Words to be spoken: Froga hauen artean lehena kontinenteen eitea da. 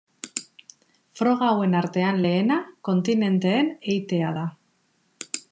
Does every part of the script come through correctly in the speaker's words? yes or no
yes